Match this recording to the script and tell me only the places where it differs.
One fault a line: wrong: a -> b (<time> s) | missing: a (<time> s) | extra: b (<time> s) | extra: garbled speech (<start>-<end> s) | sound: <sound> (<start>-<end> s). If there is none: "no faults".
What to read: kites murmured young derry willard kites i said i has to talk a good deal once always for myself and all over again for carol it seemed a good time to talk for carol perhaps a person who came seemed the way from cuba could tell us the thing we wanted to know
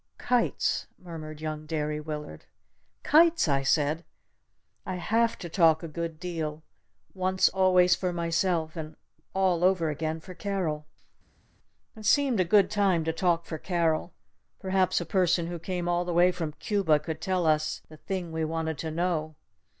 wrong: has -> have (5.0 s)
wrong: seemed -> all (15.9 s)